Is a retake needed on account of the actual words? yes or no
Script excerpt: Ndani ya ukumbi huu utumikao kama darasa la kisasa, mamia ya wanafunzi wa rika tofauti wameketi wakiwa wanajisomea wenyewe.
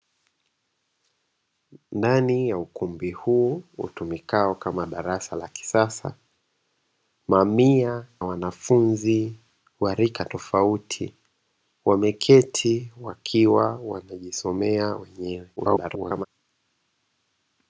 yes